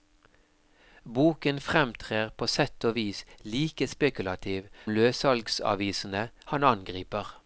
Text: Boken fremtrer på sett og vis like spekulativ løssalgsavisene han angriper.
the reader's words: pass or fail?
pass